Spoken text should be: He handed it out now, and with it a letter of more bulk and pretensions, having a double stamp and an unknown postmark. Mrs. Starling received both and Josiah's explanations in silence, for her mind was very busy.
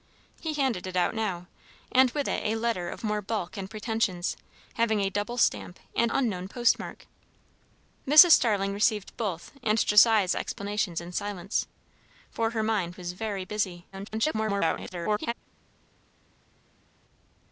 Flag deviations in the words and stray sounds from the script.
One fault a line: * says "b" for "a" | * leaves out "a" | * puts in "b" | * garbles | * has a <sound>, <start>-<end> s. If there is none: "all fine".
* leaves out "an"
* garbles